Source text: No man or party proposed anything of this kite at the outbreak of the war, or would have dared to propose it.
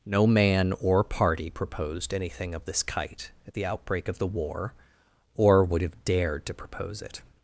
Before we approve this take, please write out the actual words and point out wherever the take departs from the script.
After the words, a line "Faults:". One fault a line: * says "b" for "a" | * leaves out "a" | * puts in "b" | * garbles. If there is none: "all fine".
No man or party proposed anything of this kite at the outbreak of the war, or would have dared to propose it.
Faults:
all fine